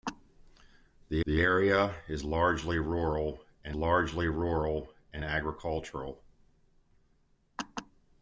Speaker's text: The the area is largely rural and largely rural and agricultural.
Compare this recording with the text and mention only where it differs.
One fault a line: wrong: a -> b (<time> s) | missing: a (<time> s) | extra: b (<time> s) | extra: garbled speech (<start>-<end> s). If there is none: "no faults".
no faults